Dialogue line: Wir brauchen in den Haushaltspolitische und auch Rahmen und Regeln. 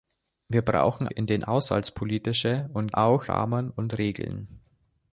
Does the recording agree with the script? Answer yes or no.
yes